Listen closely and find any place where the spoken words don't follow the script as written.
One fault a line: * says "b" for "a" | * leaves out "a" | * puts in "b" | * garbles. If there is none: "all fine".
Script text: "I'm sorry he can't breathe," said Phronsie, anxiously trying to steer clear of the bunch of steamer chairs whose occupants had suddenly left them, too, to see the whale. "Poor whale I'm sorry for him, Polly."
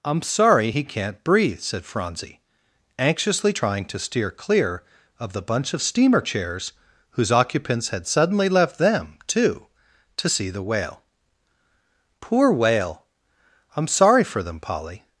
* says "them" for "him"